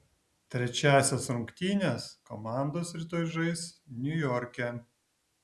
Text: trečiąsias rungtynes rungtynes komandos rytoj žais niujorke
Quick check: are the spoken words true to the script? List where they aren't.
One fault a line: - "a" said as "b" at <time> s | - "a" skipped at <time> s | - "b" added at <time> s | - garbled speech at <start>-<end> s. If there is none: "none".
- "rungtynes" skipped at 2.0 s